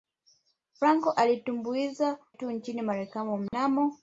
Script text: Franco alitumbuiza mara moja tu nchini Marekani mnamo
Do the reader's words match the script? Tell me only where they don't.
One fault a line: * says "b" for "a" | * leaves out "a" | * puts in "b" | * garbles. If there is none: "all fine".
* leaves out "mara moja"